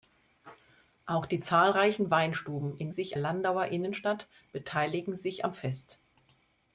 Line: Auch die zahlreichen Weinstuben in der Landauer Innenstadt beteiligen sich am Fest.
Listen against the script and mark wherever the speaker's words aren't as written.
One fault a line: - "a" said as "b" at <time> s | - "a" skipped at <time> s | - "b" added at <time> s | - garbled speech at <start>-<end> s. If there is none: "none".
- "der" said as "sich" at 2.9 s